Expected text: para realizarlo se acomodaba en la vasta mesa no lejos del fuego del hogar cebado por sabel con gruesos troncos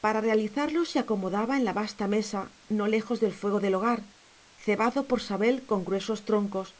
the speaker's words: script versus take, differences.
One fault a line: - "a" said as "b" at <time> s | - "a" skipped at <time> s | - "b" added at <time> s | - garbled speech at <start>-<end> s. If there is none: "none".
none